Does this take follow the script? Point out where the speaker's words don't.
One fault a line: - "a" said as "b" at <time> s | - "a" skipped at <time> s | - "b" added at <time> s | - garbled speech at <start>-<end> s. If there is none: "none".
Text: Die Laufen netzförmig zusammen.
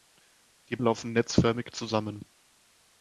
none